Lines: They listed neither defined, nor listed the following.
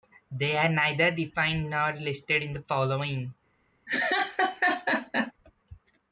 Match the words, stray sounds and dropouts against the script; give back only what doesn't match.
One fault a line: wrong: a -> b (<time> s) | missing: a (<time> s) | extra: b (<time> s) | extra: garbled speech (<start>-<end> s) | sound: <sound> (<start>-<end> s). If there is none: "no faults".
wrong: listed -> are (0.6 s)
extra: in (2.4 s)
sound: laugh (3.9-5.3 s)